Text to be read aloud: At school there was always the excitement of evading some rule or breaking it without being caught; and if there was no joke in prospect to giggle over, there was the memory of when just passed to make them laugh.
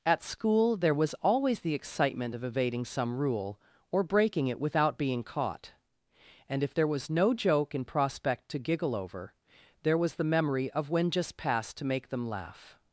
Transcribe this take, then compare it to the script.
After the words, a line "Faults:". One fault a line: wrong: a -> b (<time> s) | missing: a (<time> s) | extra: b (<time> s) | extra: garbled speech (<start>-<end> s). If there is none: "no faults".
At school there was always the excitement of evading some rule or breaking it without being caught; and if there was no joke in prospect to giggle over, there was the memory of when just passed to make them laugh.
Faults:
no faults